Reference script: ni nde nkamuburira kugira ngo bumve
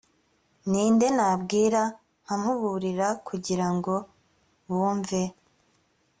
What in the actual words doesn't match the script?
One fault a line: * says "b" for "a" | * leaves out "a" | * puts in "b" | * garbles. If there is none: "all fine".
* puts in "nabwira"